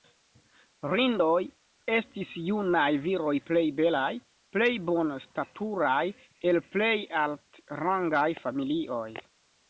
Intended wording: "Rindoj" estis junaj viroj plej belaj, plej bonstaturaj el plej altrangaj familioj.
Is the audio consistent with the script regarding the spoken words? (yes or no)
yes